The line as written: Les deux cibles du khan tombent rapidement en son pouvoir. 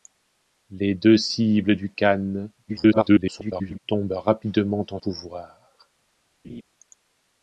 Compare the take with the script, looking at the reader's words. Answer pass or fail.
fail